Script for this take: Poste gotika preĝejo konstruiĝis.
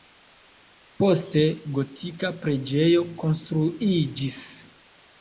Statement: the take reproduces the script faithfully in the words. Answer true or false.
true